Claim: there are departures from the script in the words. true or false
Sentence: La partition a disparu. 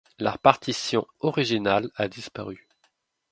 true